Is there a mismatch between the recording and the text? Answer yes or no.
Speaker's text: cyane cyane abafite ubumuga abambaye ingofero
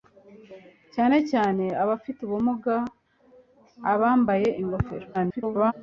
yes